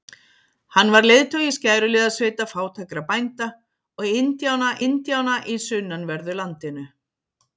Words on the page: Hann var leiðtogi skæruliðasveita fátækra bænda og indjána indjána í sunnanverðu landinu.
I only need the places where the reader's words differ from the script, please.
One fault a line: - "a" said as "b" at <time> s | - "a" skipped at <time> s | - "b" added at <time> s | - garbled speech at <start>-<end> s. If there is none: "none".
none